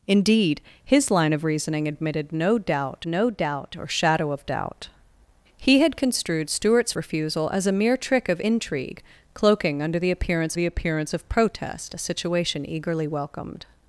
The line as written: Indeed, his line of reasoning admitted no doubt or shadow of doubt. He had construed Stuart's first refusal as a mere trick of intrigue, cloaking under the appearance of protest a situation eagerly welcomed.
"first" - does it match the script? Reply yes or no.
no